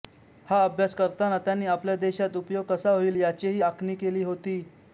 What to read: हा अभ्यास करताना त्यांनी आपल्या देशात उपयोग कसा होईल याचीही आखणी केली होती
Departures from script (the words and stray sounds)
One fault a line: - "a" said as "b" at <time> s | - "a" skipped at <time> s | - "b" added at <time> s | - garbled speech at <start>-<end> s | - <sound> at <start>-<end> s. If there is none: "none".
none